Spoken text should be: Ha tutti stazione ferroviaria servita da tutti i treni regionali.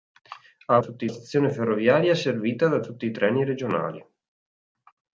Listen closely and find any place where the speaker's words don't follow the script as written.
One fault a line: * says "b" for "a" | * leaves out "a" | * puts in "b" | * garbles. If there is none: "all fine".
all fine